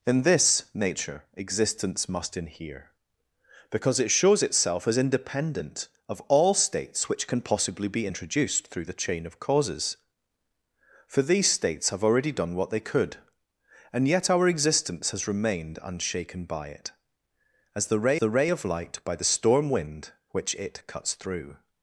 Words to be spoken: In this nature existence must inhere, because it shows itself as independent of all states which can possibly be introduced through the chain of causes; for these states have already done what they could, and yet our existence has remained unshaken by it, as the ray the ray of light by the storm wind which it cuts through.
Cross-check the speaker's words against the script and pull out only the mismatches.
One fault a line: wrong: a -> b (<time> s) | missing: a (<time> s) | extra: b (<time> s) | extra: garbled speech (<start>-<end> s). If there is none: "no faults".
no faults